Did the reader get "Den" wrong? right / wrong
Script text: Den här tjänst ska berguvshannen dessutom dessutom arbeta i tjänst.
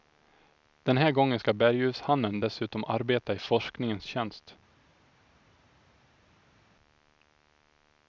right